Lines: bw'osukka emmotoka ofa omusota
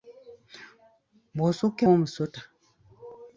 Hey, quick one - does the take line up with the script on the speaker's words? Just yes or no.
no